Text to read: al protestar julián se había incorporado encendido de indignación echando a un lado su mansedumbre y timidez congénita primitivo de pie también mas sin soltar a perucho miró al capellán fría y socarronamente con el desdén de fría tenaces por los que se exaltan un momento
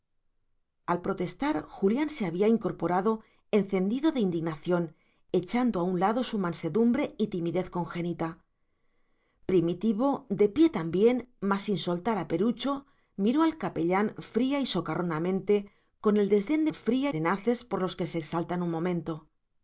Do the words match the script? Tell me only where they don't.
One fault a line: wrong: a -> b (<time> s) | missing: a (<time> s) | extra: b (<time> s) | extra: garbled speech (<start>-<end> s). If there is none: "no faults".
no faults